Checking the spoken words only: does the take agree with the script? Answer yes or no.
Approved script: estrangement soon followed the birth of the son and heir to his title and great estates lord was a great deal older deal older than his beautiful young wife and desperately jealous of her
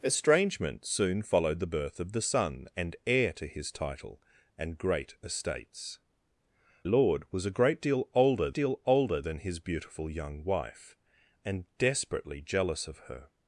yes